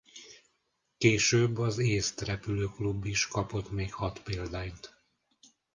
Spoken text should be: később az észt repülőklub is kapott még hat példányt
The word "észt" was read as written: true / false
true